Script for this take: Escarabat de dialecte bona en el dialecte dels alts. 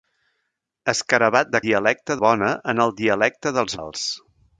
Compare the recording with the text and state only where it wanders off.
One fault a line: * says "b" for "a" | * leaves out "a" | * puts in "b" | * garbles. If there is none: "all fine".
all fine